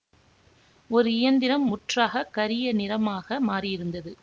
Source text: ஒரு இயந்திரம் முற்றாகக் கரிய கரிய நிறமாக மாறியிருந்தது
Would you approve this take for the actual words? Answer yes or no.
no